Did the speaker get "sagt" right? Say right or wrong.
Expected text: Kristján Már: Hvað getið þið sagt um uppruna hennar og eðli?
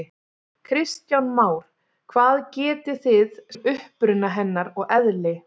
wrong